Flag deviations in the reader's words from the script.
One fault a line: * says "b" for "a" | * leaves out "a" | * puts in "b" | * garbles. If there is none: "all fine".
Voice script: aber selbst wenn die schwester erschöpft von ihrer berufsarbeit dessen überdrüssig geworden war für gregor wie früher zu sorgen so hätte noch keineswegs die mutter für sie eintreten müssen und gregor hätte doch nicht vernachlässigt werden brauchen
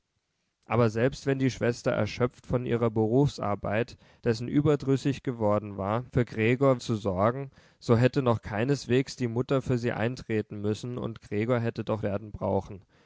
* leaves out "wie früher"
* leaves out "nicht vernachlässigt"